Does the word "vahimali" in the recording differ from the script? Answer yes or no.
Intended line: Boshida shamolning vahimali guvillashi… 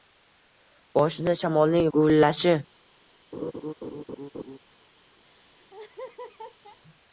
yes